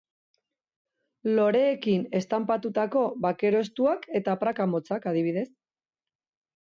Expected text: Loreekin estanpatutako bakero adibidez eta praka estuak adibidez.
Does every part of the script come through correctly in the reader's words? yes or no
no